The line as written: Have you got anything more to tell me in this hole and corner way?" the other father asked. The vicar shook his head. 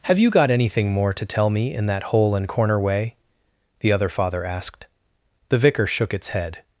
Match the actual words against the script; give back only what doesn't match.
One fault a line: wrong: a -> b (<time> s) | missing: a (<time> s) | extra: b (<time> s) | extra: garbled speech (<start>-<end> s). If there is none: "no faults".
wrong: this -> that (1.9 s)
wrong: his -> its (6.1 s)